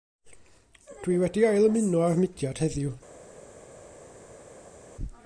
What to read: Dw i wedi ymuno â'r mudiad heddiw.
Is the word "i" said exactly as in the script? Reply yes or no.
yes